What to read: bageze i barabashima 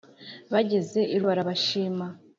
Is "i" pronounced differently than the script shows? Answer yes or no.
no